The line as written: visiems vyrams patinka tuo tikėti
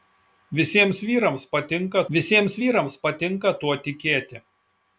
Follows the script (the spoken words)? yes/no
no